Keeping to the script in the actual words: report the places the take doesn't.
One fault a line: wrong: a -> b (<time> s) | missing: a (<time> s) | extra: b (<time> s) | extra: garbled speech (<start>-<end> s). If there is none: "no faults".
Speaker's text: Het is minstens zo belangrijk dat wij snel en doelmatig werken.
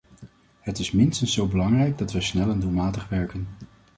no faults